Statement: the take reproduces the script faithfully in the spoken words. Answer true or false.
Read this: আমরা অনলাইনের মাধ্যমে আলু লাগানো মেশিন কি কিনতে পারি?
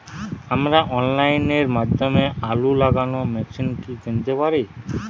true